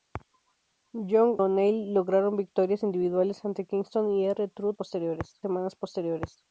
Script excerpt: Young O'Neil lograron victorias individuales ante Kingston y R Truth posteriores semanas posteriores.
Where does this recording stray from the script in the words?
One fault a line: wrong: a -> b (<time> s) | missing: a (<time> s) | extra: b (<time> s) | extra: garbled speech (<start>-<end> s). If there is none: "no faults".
no faults